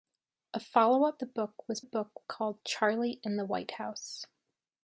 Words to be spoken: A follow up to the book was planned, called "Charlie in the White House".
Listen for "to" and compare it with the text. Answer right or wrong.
wrong